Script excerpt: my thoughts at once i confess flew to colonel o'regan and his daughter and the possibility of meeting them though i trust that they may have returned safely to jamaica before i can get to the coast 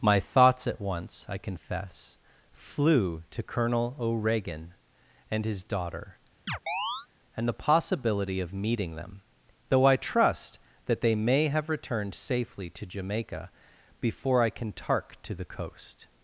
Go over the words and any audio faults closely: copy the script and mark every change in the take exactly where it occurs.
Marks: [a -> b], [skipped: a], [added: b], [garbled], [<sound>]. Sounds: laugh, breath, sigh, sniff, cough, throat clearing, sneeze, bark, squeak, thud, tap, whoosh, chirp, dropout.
my thoughts at once i confess flew to colonel o'regan and his daughter [chirp] and the possibility of meeting them though i trust that they may have returned safely to jamaica before i can [get -> tark] to the coast